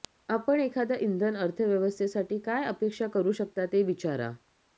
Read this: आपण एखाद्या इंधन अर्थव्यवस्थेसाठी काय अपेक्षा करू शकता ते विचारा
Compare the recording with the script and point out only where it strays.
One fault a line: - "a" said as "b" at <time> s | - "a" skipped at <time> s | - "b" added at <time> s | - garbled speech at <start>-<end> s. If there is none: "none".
none